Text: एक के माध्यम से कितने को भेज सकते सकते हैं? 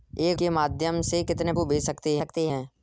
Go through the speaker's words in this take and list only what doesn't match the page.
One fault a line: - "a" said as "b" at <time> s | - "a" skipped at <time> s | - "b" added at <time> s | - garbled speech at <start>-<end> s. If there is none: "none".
none